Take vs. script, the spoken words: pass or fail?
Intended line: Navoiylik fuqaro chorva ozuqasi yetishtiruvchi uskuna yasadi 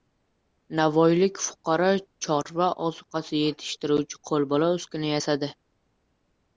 fail